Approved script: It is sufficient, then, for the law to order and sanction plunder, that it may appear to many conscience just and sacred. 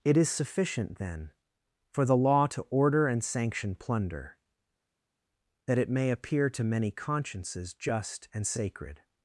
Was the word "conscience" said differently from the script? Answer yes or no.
yes